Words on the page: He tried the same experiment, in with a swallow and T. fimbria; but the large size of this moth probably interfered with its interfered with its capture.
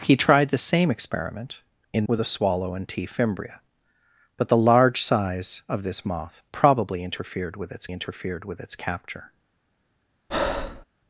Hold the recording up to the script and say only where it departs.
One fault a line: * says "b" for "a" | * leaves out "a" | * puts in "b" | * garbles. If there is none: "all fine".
all fine